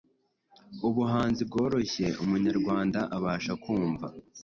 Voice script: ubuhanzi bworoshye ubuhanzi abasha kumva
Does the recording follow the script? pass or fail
fail